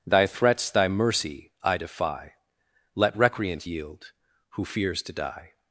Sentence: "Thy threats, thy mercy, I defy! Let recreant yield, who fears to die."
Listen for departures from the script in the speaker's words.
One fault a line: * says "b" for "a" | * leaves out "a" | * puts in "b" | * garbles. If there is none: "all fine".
all fine